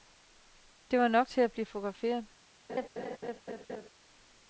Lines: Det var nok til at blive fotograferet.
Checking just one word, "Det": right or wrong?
right